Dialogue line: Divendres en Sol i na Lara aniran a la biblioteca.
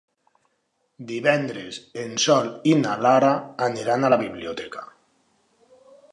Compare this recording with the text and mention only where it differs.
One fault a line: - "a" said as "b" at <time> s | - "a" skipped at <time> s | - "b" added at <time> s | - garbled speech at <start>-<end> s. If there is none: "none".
none